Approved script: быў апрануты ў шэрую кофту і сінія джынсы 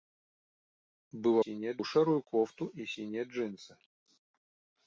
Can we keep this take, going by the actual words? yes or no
no